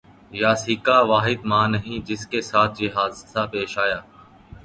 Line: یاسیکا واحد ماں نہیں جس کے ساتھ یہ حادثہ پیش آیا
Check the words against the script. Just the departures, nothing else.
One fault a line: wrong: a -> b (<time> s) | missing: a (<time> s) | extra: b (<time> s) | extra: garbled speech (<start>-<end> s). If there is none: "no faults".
no faults